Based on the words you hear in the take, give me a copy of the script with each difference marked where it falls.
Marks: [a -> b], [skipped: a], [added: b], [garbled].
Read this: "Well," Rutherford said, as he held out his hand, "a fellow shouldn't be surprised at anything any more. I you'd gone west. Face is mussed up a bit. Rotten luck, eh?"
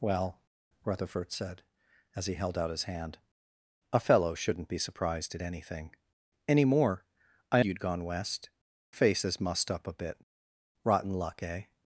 "Well," Rutherford said, as he held out his hand, "a fellow shouldn't be surprised at anything any more. I you'd gone west. Face is mussed up a bit. Rotten luck, eh?"